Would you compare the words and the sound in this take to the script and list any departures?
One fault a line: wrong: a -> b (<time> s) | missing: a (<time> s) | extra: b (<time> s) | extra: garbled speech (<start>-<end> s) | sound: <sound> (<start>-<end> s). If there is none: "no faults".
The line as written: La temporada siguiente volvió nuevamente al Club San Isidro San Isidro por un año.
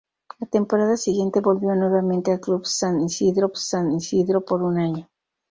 no faults